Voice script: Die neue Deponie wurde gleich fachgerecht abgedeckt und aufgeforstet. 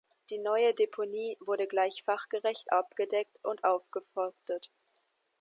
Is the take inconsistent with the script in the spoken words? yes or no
no